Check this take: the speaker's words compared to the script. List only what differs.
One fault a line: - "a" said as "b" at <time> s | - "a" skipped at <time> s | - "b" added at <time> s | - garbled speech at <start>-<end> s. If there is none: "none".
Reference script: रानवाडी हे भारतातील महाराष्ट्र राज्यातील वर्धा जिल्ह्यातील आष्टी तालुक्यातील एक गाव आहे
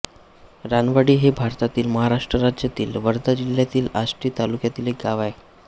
none